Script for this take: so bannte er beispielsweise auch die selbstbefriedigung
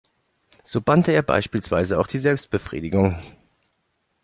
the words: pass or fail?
pass